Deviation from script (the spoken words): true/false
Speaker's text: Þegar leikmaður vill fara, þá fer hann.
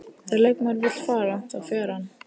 false